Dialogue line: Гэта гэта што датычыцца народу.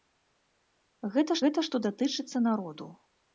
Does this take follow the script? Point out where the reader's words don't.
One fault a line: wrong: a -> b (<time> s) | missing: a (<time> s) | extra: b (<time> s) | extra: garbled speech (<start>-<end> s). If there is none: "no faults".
no faults